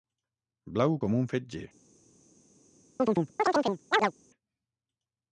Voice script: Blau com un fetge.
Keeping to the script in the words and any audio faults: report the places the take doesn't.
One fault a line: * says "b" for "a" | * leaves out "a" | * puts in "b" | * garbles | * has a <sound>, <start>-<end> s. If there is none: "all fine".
* has a chirp, 3.0-4.1 s